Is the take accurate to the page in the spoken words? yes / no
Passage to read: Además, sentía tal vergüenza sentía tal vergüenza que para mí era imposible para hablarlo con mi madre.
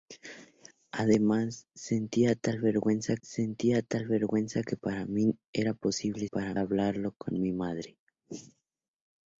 yes